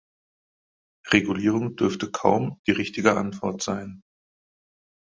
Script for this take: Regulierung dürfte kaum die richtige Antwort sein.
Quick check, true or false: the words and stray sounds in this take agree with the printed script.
true